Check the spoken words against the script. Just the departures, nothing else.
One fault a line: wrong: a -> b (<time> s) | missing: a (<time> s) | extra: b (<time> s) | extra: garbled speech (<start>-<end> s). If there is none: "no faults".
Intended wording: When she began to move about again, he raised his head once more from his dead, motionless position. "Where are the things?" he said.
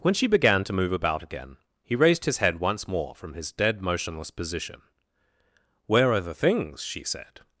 wrong: he -> she (6.8 s)